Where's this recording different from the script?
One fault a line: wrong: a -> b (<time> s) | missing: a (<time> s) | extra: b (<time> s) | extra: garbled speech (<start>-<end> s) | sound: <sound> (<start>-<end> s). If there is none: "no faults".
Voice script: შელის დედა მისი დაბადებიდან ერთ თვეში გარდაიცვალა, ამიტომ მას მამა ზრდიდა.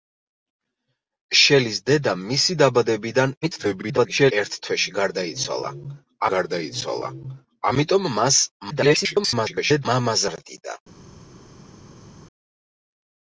extra: garbled speech (3.4-4.3 s)
extra: გარდაიცვალა (6.3 s)
extra: garbled speech (8.7-9.9 s)